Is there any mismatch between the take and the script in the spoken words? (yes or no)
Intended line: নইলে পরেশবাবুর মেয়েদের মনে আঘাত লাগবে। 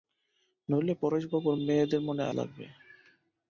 yes